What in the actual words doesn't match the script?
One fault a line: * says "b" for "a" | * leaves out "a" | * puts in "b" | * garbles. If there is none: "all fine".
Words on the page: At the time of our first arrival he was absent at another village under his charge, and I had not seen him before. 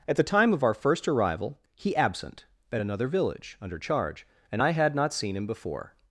* leaves out "was"
* leaves out "his"